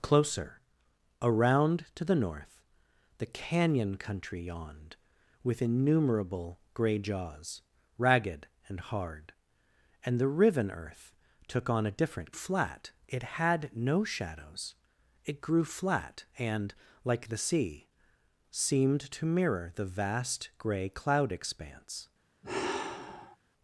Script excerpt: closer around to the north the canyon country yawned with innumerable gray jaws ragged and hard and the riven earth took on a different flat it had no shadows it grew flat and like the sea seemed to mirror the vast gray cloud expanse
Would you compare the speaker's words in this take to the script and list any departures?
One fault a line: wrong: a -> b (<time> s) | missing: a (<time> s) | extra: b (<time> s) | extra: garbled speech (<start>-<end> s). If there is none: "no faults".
no faults